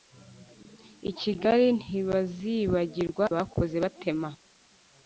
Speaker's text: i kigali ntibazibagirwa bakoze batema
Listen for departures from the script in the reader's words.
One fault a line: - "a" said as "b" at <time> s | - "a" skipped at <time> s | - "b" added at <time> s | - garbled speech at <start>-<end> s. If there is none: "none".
none